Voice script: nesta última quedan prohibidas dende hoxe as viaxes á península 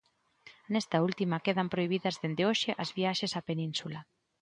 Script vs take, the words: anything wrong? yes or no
no